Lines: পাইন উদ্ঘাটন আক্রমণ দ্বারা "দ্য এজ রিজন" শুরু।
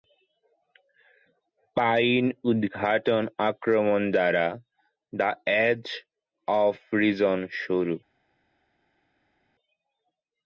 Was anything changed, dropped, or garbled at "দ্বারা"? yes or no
no